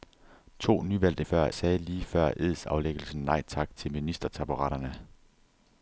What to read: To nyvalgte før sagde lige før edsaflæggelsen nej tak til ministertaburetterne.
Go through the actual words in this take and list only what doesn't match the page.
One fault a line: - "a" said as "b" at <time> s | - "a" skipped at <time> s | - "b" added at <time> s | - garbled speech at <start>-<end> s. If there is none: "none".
none